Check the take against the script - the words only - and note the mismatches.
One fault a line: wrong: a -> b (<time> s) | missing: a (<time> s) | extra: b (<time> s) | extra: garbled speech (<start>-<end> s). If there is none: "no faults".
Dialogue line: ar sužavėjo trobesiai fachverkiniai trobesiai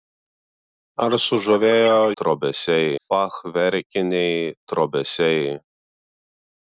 no faults